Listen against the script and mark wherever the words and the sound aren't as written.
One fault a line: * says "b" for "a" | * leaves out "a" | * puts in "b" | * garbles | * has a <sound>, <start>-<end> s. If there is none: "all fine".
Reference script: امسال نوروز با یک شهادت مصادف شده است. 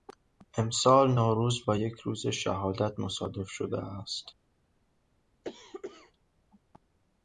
* puts in "روز"
* has a cough, 5.4-6.1 s